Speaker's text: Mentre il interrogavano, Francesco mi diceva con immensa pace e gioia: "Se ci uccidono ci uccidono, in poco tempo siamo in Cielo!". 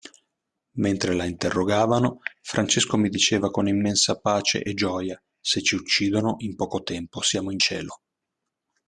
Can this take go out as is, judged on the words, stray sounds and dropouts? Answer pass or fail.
fail